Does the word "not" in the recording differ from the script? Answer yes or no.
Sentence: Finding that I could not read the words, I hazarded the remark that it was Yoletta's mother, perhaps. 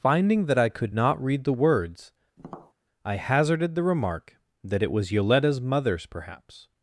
no